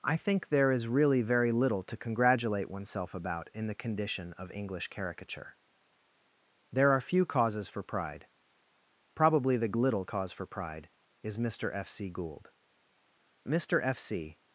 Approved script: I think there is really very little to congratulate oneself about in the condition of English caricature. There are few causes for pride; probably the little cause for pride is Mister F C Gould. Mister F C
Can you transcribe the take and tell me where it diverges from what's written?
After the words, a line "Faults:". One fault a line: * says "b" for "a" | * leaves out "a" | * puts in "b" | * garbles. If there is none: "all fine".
I think there is really very little to congratulate oneself about in the condition of English caricature. There are few causes for pride; probably the little cause for pride is Mister F C Gould. Mister F C
Faults:
all fine